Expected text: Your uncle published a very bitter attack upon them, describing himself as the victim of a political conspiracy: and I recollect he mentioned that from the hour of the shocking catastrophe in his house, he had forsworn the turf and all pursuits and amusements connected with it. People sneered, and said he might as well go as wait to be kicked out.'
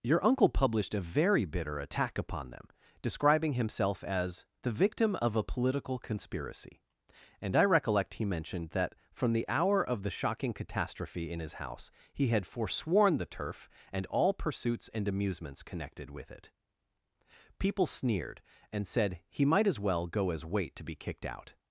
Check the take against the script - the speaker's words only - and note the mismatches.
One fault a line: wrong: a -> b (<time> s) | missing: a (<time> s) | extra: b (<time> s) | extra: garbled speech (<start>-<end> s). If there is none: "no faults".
no faults